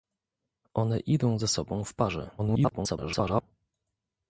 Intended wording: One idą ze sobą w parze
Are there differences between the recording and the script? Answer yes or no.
yes